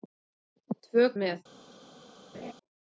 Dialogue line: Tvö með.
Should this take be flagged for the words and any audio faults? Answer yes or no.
yes